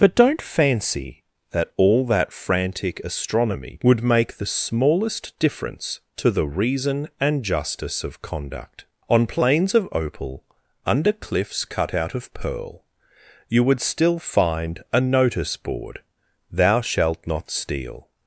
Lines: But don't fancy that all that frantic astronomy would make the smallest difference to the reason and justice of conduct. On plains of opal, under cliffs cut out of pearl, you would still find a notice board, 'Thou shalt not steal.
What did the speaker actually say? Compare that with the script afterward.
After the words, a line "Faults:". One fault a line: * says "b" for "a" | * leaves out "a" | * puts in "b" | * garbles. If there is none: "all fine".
But don't fancy that all that frantic astronomy would make the smallest difference to the reason and justice of conduct. On plains of opal, under cliffs cut out of pearl, you would still find a notice board, 'Thou shalt not steal.
Faults:
all fine